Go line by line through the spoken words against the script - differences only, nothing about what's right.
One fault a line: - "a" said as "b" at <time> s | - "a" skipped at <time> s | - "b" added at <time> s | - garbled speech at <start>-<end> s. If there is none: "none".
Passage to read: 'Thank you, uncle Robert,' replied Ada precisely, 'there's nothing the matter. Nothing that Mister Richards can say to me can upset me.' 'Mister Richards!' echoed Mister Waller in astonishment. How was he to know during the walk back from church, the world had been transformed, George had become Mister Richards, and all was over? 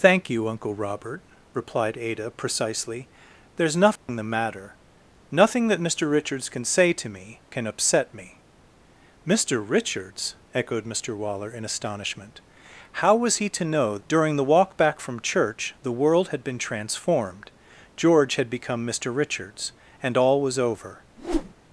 none